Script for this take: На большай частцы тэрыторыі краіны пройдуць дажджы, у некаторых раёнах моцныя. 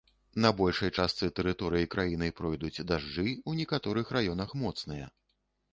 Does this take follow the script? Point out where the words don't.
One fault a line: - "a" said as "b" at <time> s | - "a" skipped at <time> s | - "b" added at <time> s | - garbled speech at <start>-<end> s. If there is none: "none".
none